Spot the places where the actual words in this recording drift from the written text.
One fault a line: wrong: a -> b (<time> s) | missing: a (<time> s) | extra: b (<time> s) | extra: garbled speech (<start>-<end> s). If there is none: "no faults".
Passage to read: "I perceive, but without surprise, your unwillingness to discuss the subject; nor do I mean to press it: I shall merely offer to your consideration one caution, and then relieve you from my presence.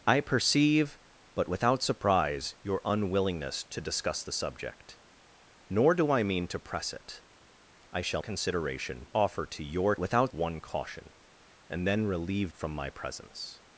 wrong: merely -> consideration (8.2 s)
wrong: consideration -> without (10.0 s)
missing: you (12.5 s)